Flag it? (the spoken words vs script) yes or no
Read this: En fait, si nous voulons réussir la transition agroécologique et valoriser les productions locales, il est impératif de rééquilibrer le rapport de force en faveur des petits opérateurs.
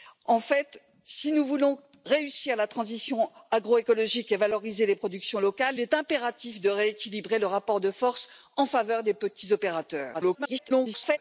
yes